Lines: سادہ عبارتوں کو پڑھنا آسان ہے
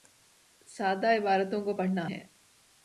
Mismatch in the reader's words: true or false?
true